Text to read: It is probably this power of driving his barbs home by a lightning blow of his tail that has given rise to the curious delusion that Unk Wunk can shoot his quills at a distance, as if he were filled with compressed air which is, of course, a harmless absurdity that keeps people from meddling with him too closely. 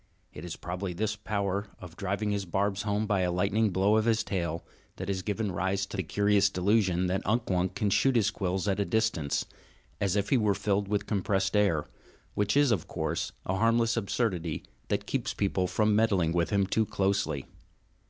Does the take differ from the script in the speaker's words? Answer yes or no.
no